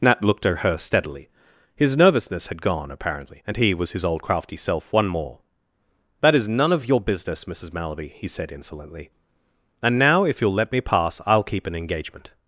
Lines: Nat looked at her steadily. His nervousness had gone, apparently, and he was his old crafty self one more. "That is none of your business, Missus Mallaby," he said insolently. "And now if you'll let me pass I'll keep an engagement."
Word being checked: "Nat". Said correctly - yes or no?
yes